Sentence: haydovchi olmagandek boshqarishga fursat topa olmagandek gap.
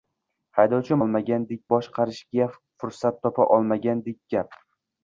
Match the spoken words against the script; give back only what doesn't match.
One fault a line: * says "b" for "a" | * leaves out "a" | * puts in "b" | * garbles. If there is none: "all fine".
all fine